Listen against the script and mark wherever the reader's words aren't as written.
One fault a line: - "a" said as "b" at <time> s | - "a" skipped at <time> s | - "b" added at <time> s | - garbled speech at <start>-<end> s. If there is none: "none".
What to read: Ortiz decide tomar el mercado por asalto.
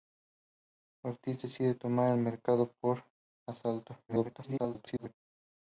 - garbled speech at 4.1-5.1 s